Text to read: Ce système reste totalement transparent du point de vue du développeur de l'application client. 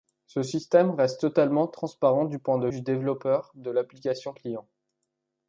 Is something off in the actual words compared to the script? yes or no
yes